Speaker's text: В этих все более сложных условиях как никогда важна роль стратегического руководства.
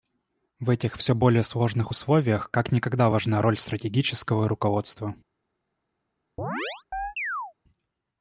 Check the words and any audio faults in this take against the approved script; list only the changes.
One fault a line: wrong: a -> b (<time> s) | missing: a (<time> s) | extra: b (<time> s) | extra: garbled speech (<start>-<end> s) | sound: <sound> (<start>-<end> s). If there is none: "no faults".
sound: chirp (6.4-7.5 s)